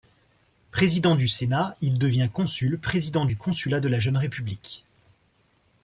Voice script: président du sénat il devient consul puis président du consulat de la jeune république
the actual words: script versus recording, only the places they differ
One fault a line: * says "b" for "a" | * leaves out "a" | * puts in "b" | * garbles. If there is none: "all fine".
* leaves out "puis"